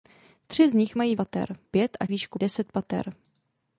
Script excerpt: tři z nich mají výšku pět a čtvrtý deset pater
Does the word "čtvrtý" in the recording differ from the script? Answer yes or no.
yes